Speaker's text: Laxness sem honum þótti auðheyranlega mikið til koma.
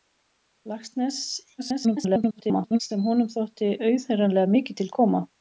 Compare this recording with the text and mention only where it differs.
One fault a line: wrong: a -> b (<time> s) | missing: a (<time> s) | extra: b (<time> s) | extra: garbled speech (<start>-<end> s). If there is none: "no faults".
extra: garbled speech (1.6-2.8 s)